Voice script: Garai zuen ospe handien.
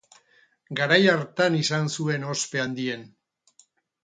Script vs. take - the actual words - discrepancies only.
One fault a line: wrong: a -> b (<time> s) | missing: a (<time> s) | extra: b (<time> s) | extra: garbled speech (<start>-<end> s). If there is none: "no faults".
extra: hartan izan (1.1 s)